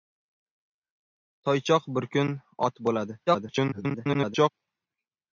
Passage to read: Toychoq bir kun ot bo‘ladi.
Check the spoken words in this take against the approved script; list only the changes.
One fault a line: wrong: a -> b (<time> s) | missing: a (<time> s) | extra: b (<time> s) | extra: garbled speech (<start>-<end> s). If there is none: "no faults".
extra: garbled speech (3.3-4.5 s)